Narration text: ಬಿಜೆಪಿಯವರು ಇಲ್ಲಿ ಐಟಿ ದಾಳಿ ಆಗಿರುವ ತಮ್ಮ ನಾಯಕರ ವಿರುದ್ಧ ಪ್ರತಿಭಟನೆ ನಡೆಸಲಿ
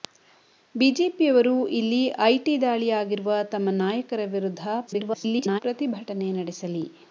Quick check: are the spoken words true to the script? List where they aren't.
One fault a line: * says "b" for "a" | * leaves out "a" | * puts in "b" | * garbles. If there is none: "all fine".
* garbles